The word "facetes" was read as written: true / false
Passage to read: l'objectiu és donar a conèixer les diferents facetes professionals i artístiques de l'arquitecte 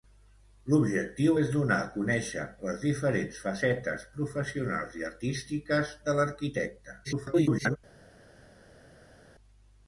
true